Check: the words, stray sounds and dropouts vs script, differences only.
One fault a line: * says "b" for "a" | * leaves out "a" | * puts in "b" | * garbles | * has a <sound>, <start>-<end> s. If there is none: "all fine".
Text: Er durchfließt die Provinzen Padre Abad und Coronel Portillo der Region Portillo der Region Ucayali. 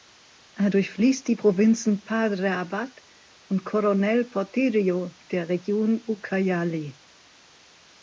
* leaves out "Portillo der Region"